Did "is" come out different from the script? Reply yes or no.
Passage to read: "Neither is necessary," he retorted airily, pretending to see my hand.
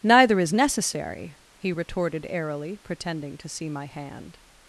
no